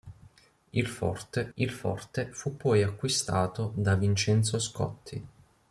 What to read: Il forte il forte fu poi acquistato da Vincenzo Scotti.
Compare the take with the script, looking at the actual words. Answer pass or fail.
pass